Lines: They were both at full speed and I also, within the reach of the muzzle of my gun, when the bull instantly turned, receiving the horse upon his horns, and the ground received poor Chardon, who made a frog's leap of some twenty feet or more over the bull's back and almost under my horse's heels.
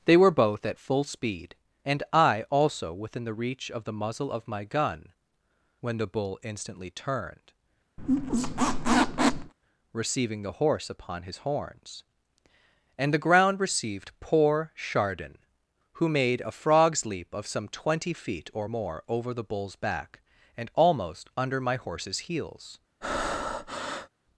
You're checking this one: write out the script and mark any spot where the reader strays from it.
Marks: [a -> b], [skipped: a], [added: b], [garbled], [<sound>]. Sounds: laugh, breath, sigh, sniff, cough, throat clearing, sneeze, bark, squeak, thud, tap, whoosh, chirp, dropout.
They were both at full speed and I also, within the reach of the muzzle of my gun, when the bull instantly turned, [squeak] receiving the horse upon his horns, and the ground received poor Chardon, who made a frog's leap of some twenty feet or more over the bull's back and almost under my horse's heels. [breath]